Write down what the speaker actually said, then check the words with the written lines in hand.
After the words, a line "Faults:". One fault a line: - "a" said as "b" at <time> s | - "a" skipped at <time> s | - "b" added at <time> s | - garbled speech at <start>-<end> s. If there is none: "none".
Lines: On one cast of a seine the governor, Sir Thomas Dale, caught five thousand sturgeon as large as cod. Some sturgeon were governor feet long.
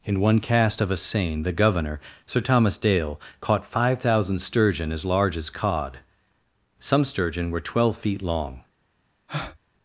In one cast of a seine the governor, Sir Thomas Dale, caught five thousand sturgeon as large as cod. Some sturgeon were twelve feet long.
Faults:
- "On" said as "In" at 0.0 s
- "governor" said as "twelve" at 7.6 s